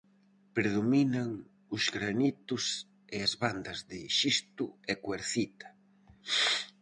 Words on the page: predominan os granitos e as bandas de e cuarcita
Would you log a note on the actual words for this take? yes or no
yes